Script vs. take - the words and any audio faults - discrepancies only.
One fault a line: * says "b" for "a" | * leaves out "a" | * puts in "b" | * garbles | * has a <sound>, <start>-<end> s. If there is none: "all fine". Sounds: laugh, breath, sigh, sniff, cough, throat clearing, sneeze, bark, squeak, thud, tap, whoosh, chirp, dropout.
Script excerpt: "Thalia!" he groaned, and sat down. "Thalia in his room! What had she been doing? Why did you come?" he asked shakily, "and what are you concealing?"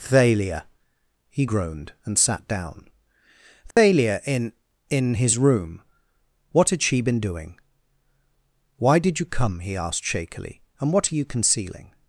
* has a dropout, 3.7-3.8 s
* puts in "in"